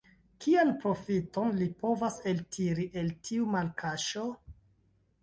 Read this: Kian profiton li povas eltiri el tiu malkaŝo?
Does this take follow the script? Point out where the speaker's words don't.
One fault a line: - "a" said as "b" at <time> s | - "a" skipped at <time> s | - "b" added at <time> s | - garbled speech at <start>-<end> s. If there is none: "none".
none